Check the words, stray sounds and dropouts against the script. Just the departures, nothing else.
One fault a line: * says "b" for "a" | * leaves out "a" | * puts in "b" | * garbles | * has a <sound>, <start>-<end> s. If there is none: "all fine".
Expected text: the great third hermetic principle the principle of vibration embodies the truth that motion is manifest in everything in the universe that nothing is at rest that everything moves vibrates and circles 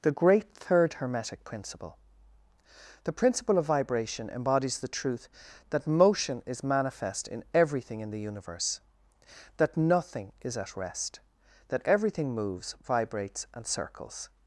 all fine